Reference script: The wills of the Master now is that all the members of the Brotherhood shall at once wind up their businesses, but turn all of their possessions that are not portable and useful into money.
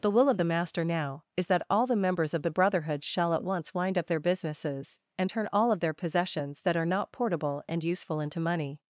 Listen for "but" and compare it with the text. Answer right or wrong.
wrong